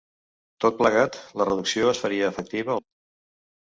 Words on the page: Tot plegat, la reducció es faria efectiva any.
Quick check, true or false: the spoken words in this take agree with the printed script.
true